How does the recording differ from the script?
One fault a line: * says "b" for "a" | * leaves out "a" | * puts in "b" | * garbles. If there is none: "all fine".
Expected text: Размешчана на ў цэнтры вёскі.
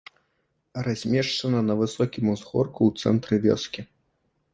* puts in "высокім узгорку"